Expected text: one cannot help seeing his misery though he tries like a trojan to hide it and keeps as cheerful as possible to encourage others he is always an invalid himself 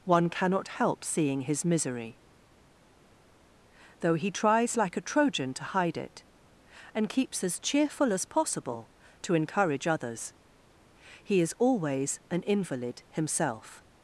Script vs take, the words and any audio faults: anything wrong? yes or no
no